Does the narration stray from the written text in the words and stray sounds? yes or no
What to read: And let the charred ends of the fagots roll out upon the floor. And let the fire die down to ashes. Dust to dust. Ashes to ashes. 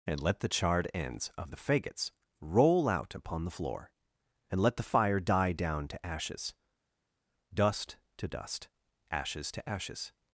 no